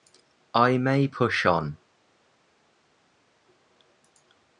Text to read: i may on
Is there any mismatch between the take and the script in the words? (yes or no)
yes